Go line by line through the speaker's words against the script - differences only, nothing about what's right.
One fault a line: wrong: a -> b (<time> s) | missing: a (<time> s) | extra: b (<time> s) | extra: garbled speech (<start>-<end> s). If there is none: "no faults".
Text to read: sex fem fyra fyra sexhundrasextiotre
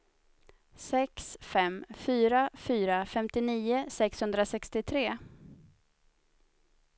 extra: femtionio (3.0 s)